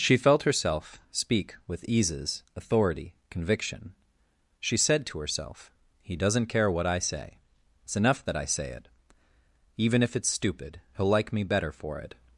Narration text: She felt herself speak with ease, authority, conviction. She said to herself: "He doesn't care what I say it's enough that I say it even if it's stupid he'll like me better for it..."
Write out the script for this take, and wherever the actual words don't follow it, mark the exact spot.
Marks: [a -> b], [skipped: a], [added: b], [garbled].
She felt herself speak with [ease, -> eases] authority, conviction. She said to herself: "He doesn't care what I say it's enough that I say it even if it's stupid he'll like me better for it..."